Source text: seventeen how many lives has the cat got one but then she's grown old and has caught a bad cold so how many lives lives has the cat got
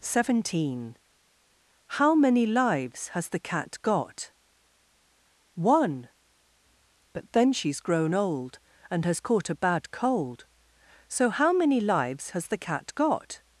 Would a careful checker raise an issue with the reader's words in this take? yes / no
yes